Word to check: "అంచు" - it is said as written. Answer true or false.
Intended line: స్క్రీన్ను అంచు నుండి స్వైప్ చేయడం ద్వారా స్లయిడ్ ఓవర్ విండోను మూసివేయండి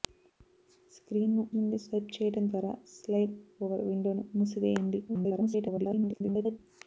false